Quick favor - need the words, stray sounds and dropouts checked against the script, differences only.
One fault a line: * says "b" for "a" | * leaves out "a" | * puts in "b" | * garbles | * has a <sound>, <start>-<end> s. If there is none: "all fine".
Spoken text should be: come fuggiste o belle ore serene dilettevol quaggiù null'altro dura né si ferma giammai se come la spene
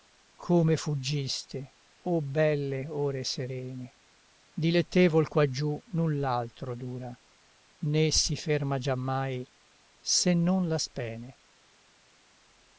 * says "non" for "come"